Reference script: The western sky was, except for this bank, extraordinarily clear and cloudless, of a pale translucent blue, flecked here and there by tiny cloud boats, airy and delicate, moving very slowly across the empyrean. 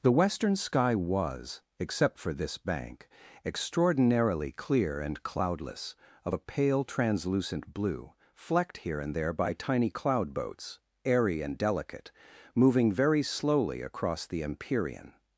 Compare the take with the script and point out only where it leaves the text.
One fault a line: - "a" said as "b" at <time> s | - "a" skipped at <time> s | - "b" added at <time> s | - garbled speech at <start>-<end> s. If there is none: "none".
none